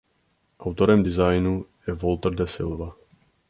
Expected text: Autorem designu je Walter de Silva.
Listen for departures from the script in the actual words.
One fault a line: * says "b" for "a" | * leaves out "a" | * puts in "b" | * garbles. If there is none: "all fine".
all fine